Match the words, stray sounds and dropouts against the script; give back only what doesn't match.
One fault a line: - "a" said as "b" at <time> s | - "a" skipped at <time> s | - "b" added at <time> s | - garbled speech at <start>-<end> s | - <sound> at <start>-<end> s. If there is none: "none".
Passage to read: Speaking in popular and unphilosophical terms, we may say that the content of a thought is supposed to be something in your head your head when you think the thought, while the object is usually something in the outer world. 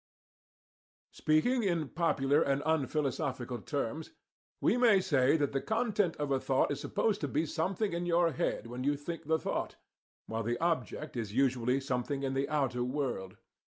- "your head" skipped at 8.7 s